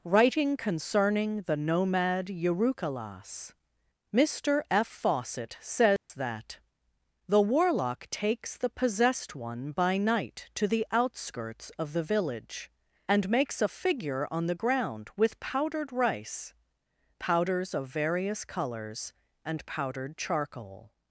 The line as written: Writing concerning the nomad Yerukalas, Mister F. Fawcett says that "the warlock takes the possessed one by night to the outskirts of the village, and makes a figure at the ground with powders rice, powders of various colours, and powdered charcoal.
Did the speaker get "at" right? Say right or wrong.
wrong